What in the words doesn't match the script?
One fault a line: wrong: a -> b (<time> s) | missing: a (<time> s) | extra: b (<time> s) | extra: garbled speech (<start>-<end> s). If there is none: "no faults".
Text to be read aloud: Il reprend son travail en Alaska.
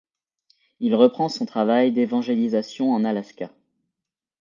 extra: d'évangélisation (1.9 s)